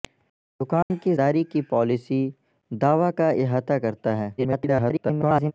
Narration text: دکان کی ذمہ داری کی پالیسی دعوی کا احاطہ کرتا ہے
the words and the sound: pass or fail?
fail